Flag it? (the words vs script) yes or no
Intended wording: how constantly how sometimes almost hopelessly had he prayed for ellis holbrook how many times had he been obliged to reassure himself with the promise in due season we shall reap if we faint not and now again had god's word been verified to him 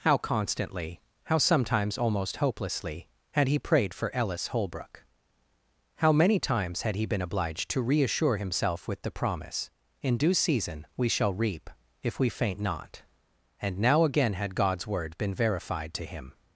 no